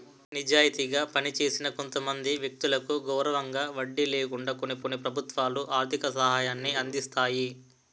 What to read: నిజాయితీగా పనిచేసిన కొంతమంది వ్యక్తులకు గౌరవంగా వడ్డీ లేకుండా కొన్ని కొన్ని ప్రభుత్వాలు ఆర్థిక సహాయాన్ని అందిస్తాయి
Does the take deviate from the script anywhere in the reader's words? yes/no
no